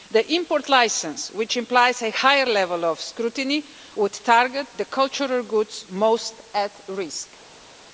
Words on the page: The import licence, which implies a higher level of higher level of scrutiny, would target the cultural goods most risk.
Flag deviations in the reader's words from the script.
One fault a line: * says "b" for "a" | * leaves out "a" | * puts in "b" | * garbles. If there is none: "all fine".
* leaves out "higher level of"
* puts in "at"